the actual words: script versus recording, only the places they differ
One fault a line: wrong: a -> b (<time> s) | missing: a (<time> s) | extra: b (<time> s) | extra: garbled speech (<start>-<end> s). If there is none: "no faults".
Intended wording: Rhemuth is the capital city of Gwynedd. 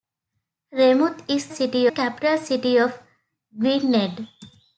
wrong: the -> city (1.5 s)